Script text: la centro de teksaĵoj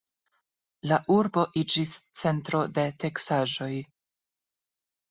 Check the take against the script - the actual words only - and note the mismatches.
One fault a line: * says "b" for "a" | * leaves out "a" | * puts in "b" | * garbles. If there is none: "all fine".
* puts in "urbo iĝis"